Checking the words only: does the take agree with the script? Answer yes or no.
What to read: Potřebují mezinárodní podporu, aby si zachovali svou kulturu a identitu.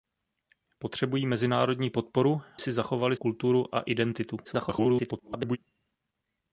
no